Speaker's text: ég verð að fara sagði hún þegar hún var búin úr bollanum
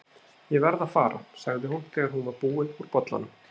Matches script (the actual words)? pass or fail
pass